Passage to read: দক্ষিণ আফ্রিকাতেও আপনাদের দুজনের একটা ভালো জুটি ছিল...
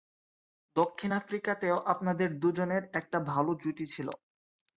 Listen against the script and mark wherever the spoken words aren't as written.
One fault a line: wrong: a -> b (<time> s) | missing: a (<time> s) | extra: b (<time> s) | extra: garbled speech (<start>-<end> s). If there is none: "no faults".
no faults